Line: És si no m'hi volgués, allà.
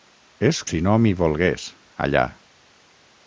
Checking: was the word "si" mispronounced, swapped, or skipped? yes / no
no